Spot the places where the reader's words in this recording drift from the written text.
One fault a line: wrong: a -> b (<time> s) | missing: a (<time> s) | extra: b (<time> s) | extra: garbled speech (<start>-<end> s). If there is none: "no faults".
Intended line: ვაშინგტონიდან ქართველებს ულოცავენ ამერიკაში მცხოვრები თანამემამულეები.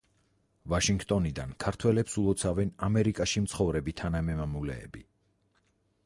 no faults